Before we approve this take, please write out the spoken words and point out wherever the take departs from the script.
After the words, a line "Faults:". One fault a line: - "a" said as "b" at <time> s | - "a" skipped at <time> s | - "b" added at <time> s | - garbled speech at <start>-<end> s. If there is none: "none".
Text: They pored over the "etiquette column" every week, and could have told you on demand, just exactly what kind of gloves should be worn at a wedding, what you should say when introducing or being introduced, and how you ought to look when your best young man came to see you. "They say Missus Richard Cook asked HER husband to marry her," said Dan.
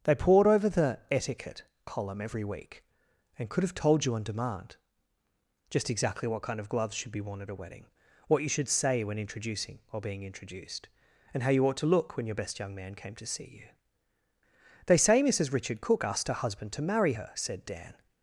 They pored over the "etiquette column" every week, and could have told you on demand, just exactly what kind of gloves should be worn at a wedding, what you should say when introducing or being introduced, and how you ought to look when your best young man came to see you. "They say Missus Richard Cook asked HER husband to marry her," said Dan.
Faults:
none